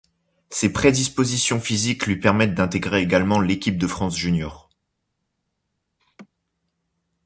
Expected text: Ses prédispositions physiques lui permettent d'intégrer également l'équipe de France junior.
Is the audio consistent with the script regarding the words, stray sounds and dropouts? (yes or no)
no